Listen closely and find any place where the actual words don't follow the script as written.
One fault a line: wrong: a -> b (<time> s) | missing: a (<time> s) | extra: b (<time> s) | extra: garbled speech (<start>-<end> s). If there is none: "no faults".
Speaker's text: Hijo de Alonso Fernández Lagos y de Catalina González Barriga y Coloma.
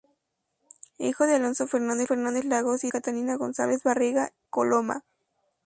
extra: Fernández (2.0 s)
missing: de (2.9 s)
missing: y (4.3 s)